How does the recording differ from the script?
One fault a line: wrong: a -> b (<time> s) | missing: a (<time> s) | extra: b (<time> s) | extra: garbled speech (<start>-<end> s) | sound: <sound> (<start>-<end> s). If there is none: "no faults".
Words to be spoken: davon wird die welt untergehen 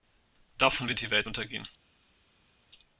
no faults